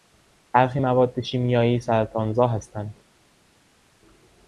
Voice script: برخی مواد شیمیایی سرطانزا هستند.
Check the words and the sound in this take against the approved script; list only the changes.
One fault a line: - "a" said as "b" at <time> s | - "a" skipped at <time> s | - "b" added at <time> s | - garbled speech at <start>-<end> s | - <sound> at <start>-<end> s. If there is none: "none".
none